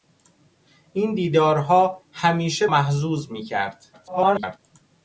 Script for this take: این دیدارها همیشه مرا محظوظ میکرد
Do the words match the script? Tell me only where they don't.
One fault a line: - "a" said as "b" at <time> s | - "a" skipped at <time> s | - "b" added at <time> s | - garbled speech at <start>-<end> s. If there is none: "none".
- "مرا" skipped at 2.7 s
- garbled speech at 3.9-4.6 s